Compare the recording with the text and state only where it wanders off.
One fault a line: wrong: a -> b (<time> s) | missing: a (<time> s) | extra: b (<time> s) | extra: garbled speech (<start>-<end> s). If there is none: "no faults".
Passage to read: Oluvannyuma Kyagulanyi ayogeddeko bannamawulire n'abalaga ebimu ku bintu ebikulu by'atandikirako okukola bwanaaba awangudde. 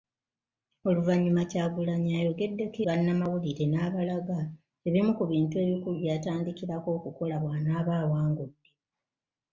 no faults